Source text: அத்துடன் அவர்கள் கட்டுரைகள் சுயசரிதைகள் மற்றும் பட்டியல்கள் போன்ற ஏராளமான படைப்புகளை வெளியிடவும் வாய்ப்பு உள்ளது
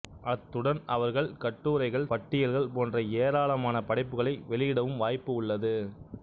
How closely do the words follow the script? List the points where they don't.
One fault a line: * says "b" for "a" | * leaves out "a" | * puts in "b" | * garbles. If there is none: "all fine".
* leaves out "சுயசரிதைகள் மற்றும்"